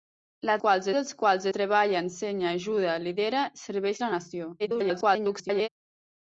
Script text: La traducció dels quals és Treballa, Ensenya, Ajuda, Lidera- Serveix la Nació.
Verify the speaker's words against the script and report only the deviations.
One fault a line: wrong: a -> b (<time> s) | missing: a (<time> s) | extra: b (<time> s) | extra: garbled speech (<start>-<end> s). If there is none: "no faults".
wrong: traducció -> quals (0.6 s)
missing: és (1.5 s)
extra: garbled speech (4.6-5.7 s)